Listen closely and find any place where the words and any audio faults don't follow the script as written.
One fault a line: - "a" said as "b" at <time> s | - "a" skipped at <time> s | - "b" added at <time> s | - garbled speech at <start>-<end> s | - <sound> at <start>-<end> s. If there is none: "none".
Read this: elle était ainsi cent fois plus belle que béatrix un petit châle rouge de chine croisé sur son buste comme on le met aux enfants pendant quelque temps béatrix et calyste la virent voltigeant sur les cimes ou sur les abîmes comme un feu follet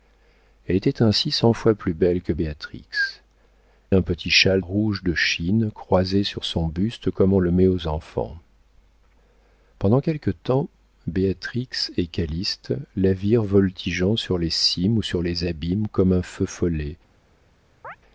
- chirp at 17.8-18.0 s